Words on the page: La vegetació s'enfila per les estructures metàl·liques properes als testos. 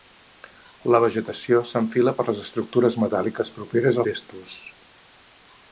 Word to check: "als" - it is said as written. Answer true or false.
false